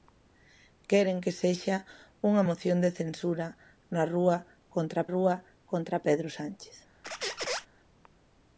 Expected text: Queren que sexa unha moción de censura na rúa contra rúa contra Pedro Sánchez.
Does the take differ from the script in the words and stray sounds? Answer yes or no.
yes